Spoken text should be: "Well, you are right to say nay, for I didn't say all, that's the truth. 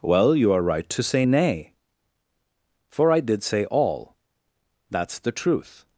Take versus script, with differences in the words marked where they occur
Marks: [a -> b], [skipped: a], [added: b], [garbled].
"Well, you are right to say nay, for I [didn't -> did] say all, that's the truth.